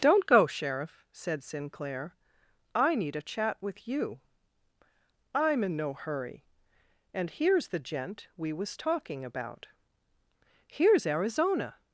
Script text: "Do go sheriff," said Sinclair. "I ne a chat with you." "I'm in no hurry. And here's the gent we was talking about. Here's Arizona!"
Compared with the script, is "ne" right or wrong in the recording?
wrong